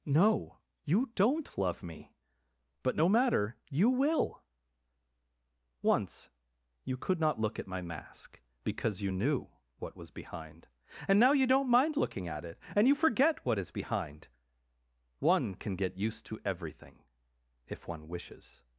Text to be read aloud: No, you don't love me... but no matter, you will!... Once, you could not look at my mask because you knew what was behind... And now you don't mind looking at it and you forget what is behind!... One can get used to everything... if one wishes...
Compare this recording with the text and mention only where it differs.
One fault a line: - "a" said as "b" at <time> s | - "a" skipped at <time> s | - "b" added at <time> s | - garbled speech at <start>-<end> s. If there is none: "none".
none